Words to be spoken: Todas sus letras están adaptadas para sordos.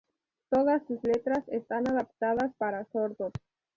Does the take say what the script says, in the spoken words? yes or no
yes